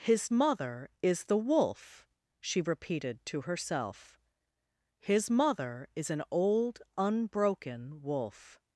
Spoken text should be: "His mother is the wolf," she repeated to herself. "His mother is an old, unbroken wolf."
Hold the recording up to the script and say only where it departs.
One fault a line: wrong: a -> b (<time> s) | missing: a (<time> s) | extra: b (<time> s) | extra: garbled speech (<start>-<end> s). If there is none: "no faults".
no faults